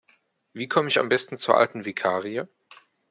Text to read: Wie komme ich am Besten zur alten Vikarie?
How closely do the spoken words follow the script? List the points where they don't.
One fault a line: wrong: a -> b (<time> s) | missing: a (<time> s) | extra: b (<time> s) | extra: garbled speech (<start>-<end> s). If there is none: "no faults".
no faults